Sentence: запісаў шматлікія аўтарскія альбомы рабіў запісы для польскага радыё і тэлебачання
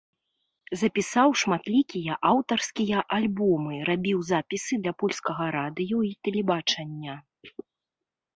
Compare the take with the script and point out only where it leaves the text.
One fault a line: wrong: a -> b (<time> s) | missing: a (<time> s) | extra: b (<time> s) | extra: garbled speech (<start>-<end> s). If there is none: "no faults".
no faults